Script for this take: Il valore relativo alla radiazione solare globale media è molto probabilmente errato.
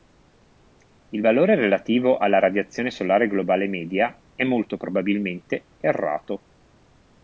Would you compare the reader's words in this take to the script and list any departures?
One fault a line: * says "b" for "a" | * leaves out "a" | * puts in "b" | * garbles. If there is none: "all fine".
all fine